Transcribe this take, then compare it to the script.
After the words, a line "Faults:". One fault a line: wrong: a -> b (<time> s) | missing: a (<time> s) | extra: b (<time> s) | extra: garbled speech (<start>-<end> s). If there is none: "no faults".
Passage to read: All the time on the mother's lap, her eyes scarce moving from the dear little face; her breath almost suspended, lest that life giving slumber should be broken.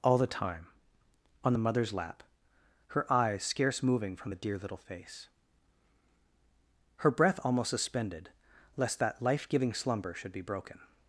All the time on the mother's lap, her eyes scarce moving from the dear little face; her breath almost suspended, lest that life giving slumber should be broken.
Faults:
no faults